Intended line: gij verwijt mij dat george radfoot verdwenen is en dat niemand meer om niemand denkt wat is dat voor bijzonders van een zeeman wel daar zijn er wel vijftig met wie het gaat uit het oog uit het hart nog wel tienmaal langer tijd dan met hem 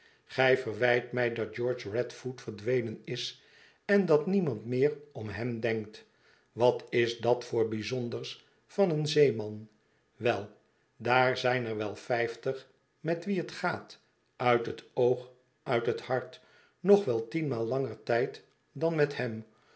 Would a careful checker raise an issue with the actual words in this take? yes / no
yes